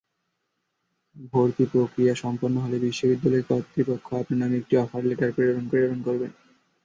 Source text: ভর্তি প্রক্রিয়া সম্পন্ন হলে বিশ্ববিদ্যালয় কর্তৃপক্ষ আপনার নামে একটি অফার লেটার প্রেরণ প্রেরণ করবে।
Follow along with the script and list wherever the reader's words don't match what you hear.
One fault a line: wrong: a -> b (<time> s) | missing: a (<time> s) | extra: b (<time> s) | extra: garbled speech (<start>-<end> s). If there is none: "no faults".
no faults